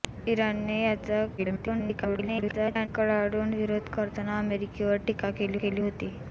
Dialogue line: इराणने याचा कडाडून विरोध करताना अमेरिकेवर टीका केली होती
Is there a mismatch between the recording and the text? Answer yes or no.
yes